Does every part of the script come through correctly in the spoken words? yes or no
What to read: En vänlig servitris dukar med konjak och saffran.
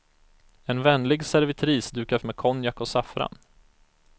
yes